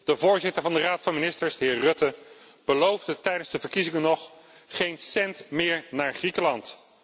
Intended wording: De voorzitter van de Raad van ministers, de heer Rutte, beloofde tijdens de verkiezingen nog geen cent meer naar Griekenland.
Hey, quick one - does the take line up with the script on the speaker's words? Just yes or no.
yes